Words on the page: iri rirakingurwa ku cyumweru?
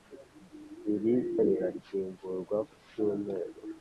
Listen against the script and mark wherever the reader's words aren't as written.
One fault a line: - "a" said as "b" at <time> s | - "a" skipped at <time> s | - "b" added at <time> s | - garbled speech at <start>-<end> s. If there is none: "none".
none